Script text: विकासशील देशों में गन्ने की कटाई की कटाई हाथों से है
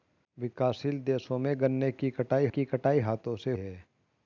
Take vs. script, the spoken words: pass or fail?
pass